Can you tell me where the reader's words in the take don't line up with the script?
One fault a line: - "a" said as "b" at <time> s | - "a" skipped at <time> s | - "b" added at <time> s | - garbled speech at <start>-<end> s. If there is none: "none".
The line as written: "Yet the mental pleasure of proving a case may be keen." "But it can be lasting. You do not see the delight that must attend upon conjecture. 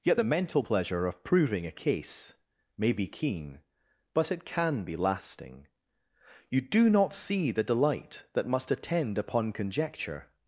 none